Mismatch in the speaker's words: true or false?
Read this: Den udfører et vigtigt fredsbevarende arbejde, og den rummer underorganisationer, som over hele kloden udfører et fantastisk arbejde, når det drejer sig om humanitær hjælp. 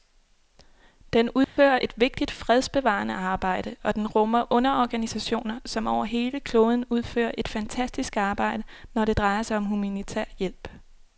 false